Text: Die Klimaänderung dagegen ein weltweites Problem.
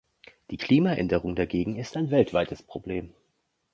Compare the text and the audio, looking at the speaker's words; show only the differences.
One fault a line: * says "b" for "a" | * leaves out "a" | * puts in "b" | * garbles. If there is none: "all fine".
* puts in "ist"